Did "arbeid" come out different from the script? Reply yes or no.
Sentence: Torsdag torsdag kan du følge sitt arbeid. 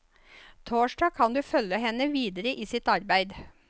no